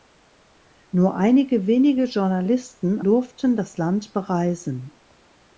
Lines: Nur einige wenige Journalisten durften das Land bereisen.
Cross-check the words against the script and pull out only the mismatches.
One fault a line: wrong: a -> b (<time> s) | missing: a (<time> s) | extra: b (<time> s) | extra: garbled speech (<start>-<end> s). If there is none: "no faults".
no faults